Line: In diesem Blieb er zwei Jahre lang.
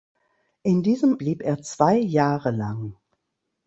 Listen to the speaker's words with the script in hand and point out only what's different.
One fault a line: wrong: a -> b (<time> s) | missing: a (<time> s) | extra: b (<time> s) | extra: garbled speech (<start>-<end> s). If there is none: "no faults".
no faults